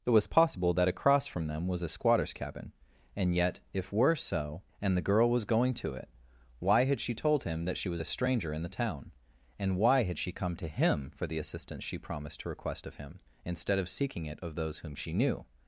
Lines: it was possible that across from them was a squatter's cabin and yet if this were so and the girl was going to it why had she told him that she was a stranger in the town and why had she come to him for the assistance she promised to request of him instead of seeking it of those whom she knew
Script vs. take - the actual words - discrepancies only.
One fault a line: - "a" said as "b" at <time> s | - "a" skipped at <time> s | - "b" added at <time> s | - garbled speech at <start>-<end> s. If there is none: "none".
- "this" skipped at 3.9 s